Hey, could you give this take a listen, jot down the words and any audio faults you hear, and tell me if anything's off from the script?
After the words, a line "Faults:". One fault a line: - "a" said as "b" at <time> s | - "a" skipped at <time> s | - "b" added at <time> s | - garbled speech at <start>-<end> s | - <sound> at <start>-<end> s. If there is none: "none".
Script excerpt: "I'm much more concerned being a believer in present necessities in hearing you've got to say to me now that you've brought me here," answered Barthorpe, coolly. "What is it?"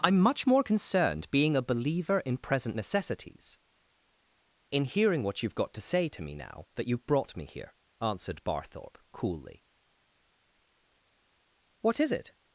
"I'm much more concerned being a believer in present necessities in hearing what you've got to say to me now that you've brought me here," answered Barthorpe, coolly. "What is it?"
Faults:
- "what" added at 5.2 s